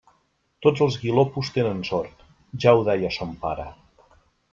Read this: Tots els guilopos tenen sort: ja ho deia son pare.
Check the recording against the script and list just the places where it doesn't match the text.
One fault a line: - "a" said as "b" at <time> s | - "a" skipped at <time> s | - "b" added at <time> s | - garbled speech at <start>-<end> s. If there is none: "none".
none